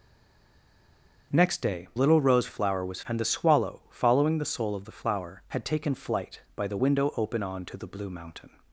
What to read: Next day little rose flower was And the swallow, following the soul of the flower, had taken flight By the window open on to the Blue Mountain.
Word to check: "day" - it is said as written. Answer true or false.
true